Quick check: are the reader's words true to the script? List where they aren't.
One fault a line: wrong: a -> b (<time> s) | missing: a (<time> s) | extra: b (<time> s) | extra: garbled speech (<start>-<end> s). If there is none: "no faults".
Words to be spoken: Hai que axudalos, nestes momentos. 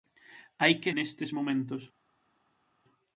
missing: axudalos (0.9 s)